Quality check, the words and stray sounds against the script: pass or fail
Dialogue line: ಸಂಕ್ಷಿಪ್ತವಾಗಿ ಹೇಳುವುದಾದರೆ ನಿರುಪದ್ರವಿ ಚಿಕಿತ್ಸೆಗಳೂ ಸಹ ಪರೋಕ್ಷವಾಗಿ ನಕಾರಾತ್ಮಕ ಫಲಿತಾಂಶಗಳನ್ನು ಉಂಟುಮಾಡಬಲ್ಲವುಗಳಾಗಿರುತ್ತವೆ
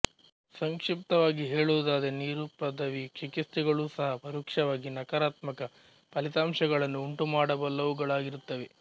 pass